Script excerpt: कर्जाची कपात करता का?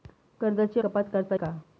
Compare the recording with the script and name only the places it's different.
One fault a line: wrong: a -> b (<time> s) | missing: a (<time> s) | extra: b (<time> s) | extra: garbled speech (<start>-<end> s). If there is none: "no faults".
no faults